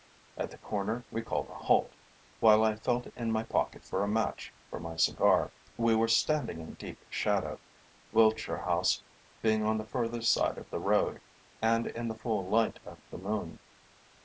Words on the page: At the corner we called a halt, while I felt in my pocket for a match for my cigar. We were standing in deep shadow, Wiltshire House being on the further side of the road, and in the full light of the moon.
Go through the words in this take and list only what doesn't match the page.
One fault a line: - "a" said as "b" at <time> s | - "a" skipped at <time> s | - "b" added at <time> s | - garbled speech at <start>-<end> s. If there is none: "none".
none